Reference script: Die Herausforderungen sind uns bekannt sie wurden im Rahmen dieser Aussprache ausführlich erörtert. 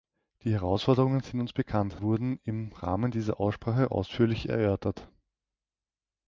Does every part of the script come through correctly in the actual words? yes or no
no